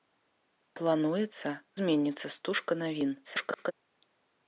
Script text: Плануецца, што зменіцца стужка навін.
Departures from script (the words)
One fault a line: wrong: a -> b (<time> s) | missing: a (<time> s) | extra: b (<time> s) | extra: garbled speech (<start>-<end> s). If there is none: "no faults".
missing: што (1.5 s)
extra: garbled speech (3.2-3.7 s)